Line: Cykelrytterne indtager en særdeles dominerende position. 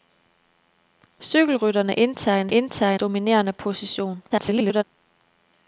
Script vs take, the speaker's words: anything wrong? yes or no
yes